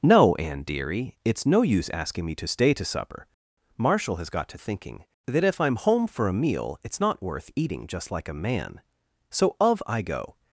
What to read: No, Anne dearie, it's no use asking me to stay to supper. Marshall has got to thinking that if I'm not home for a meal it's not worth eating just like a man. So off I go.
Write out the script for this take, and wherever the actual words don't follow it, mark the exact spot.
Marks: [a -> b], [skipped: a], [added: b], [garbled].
No, Anne dearie, it's no use asking me to stay to supper. Marshall has got to thinking that if I'm [skipped: not] home for a meal it's not worth eating just like a man. So [off -> of] I go.